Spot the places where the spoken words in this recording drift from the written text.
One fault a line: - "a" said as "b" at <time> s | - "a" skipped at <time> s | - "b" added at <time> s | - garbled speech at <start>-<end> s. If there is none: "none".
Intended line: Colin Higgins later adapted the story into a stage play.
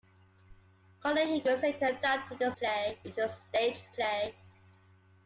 - "story" said as "play" at 2.6 s